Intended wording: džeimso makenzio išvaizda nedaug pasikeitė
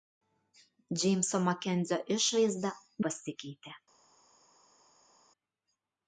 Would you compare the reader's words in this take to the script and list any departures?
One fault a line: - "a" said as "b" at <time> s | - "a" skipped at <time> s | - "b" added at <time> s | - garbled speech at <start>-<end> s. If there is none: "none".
- "nedaug" skipped at 2.8 s